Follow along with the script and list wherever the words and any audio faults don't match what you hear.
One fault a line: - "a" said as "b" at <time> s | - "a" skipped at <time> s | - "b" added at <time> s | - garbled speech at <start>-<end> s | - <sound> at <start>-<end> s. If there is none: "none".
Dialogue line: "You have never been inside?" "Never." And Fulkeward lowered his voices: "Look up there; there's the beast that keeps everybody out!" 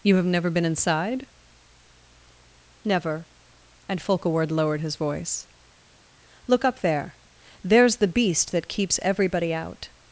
- "voices" said as "voice" at 5.0 s